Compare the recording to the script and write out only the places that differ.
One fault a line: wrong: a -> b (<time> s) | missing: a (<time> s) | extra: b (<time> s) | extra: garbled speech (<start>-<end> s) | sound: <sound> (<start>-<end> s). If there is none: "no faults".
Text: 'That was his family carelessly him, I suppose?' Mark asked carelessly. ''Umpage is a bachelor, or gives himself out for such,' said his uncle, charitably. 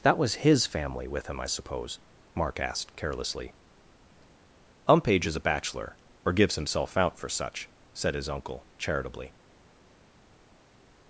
wrong: carelessly -> with (1.1 s)